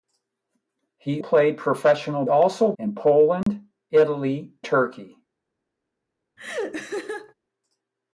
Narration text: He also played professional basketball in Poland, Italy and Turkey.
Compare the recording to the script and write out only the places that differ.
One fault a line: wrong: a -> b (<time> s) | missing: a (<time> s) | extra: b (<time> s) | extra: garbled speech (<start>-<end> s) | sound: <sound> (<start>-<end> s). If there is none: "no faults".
missing: also (1.2 s)
wrong: basketball -> also (2.3 s)
sound: dropout (3.4-3.5 s)
missing: and (4.5 s)
sound: laugh (6.4-7.3 s)